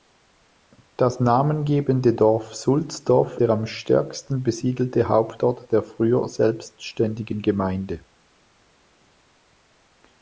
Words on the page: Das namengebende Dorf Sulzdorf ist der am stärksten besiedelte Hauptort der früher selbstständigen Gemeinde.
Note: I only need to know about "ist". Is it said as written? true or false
false